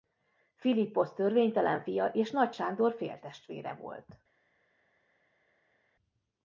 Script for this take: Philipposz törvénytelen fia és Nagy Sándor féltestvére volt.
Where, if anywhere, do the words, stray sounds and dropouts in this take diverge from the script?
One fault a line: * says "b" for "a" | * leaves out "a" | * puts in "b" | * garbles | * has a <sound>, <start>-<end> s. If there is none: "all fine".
all fine